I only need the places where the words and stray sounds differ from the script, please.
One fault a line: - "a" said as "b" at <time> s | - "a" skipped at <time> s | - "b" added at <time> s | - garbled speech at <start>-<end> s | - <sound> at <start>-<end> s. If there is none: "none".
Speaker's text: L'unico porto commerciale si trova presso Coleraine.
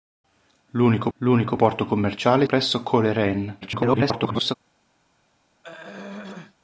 - "l'unico" added at 1.2 s
- "si trova" skipped at 2.5 s
- garbled speech at 3.6-4.6 s
- throat clearing at 5.6-6.5 s